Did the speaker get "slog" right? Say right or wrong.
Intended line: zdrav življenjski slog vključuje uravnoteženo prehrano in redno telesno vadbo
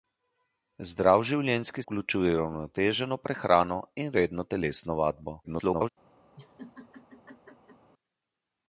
wrong